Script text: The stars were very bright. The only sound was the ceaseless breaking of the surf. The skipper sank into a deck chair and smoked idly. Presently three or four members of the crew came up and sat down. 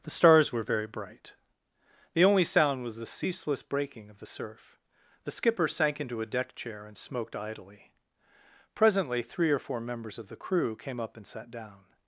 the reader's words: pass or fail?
pass